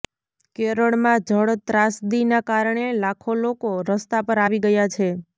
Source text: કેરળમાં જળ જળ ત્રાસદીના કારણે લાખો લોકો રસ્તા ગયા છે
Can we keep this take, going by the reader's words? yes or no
no